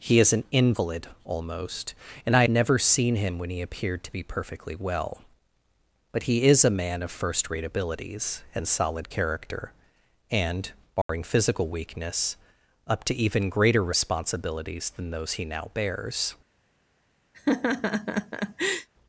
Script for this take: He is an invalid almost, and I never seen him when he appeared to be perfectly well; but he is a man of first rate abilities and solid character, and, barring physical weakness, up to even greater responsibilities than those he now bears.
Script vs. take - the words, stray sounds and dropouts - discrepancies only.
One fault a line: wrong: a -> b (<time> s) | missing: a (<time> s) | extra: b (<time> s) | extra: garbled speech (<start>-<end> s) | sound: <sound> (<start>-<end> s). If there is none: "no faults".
sound: dropout (11.0-11.1 s)
sound: laugh (17.3-18.9 s)